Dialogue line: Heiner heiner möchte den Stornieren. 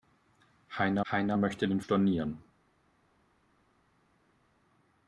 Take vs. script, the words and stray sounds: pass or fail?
pass